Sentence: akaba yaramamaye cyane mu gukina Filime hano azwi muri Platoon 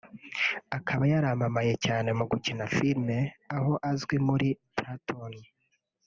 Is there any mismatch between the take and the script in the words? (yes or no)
yes